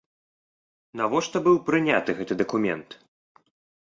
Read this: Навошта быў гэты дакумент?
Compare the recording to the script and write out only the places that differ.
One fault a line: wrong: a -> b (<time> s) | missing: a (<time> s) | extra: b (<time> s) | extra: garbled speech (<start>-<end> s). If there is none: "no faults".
extra: прыняты (1.7 s)